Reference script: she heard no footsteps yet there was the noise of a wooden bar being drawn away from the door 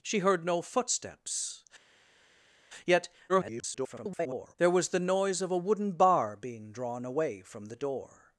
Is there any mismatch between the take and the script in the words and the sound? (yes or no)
yes